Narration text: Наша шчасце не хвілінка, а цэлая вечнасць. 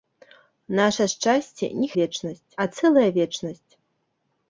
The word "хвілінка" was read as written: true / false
false